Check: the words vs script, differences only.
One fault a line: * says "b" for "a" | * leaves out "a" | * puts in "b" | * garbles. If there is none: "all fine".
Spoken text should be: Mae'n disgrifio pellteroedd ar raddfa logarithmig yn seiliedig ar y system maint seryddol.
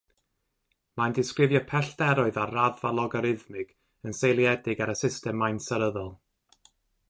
all fine